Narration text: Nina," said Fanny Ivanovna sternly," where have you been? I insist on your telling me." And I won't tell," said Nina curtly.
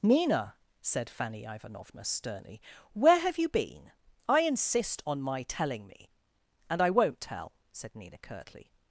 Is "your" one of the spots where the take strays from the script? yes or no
yes